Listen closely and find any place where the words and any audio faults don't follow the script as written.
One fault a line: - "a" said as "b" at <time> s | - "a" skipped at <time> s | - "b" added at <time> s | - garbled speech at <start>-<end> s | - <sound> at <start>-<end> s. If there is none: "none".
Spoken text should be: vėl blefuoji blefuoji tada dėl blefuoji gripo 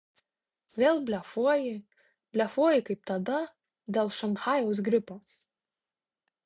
- "kaip" added at 2.9 s
- "blefuoji" said as "šanchajaus" at 4.2 s